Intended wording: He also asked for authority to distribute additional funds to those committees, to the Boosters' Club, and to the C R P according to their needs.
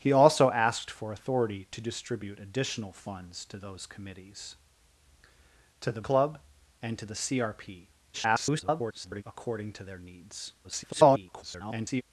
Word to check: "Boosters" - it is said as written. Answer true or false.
false